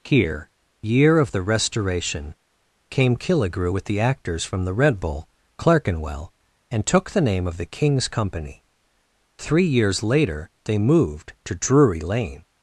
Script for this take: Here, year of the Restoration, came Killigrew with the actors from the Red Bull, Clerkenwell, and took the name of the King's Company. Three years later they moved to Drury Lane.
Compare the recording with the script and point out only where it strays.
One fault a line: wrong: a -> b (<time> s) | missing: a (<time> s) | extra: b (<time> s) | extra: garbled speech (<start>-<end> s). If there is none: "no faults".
no faults